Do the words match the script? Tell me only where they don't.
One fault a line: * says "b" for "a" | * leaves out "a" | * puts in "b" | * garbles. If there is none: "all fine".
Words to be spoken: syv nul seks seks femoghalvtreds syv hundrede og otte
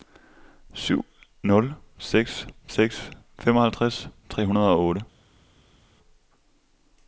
* says "tre" for "syv"